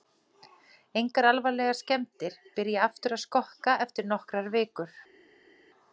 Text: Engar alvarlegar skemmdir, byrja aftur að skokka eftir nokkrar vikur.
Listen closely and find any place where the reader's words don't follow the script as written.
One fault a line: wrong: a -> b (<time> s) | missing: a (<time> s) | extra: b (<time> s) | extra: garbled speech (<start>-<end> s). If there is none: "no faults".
no faults